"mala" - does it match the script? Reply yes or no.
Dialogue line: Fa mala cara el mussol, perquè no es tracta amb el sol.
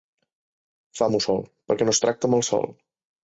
no